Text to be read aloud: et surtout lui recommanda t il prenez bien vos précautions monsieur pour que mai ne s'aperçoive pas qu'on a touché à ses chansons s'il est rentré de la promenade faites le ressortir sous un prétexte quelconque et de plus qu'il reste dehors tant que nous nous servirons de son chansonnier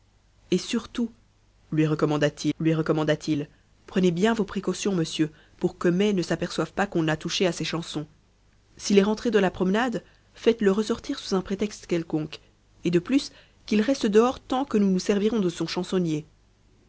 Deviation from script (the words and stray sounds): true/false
true